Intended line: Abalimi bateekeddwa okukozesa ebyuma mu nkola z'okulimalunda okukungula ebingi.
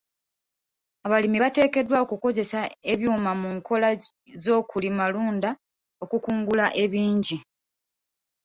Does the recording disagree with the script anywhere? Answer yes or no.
no